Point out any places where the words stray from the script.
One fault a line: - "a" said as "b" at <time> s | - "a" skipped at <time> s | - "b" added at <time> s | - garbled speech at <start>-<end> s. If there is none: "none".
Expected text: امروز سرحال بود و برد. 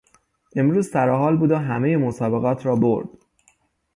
- "همهی مسابقات را" added at 1.6 s